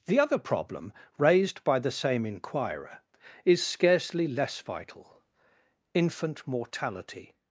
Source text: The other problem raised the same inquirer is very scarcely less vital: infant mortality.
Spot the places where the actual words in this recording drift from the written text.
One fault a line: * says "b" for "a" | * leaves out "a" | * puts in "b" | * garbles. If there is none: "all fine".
* puts in "by"
* leaves out "very"